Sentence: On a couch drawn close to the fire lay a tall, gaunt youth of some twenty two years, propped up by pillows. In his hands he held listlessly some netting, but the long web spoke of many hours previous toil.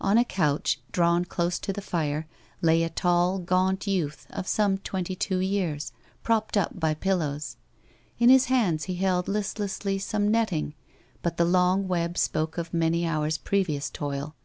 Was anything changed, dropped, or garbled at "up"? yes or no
no